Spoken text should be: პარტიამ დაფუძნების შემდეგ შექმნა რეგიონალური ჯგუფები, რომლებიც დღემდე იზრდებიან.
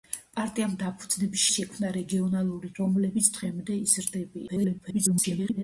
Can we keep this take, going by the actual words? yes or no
no